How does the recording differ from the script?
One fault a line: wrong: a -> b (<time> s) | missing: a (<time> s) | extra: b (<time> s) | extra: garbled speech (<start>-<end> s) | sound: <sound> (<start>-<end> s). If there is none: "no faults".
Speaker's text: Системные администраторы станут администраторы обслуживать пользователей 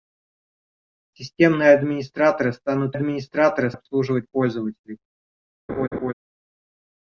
sound: laugh (5.7-6.1 s)